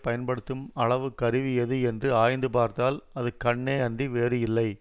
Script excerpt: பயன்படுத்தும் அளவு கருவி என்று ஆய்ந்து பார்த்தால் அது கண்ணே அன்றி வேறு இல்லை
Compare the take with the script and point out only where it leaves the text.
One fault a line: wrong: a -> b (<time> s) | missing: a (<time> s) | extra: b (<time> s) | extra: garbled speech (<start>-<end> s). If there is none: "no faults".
extra: எது (1.6 s)